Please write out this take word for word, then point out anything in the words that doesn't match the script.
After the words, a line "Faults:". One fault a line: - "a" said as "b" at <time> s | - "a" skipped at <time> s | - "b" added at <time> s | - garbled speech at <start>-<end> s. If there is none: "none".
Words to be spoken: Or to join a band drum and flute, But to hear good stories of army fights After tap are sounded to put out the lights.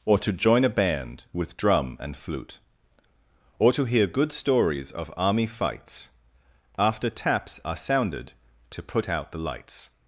Or to join a band with drum and flute, Or to hear good stories of army fights After taps are sounded to put out the lights.
Faults:
- "with" added at 1.3 s
- "But" said as "Or" at 3.6 s
- "tap" said as "taps" at 7.1 s